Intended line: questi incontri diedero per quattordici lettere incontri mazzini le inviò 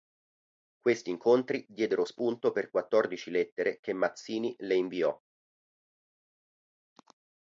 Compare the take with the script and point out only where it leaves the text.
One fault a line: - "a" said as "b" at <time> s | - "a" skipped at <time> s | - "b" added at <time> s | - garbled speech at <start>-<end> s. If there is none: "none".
- "spunto" added at 2.0 s
- "incontri" said as "che" at 3.8 s